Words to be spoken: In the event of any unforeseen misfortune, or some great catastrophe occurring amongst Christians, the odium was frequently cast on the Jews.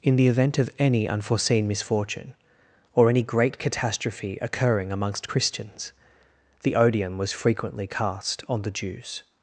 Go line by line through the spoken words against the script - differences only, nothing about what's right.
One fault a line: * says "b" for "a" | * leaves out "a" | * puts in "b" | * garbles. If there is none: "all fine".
* says "any" for "some"